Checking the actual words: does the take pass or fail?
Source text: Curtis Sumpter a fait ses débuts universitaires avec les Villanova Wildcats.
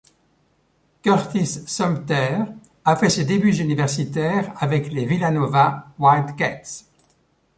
pass